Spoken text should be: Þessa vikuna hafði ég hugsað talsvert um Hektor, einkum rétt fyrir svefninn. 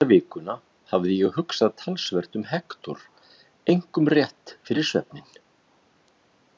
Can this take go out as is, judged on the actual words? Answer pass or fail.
pass